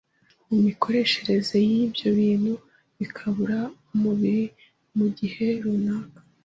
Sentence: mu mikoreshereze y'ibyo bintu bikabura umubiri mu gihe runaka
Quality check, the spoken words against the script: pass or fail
pass